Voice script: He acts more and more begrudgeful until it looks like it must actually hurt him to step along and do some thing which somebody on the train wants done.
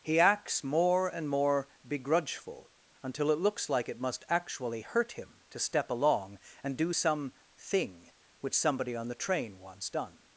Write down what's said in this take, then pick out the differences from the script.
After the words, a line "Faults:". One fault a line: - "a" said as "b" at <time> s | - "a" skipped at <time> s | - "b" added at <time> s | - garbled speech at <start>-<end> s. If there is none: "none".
He acts more and more begrudgeful until it looks like it must actually hurt him to step along and do some thing which somebody on the train wants done.
Faults:
none